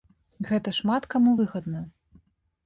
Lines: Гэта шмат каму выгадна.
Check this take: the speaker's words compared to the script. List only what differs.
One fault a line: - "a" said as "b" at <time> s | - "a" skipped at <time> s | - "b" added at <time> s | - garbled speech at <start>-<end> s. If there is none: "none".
none